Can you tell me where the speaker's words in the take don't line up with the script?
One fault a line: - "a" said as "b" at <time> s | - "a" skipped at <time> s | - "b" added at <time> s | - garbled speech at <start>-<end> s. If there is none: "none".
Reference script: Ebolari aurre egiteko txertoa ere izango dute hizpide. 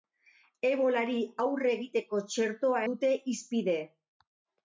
- "ere izango" skipped at 2.8 s